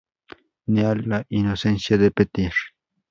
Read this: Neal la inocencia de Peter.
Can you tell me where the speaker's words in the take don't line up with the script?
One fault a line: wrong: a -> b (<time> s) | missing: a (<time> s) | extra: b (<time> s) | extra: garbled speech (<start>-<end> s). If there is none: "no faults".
no faults